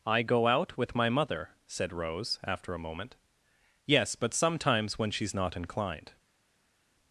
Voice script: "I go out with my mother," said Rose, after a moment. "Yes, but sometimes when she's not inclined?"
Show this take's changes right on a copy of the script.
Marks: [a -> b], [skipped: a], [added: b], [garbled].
"I go out with my mother," said Rose, after a moment. "Yes, but sometimes when she's not inclined?"